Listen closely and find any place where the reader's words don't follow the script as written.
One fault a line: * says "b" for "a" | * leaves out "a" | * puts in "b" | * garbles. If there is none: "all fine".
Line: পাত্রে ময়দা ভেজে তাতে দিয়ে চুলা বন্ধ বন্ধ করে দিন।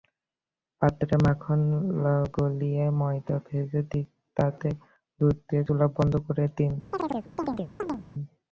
* puts in "মাখন গলিয়ে"
* puts in "দুধ"
* leaves out "বন্ধ"